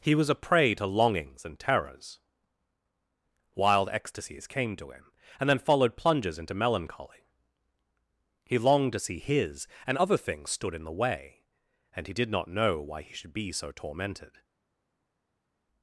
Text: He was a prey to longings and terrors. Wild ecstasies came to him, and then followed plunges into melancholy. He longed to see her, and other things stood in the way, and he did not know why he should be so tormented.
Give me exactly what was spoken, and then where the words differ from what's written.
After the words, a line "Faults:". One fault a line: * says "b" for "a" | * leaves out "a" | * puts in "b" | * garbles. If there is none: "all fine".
He was a prey to longings and terrors. Wild ecstasies came to him, and then followed plunges into melancholy. He longed to see his, and other things stood in the way, and he did not know why he should be so tormented.
Faults:
* says "his" for "her"